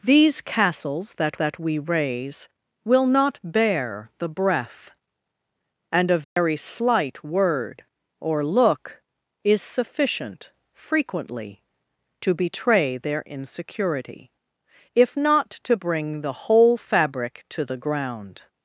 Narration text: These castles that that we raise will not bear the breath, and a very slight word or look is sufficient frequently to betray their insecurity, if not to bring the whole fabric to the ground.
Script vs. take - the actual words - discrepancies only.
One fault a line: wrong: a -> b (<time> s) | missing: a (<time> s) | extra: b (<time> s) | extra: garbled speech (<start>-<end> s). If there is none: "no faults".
no faults